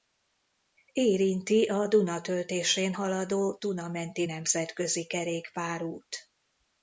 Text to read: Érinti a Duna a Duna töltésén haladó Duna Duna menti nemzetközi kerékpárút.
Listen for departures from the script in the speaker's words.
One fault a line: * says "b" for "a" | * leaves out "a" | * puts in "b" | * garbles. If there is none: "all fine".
* leaves out "a Duna"
* leaves out "Duna"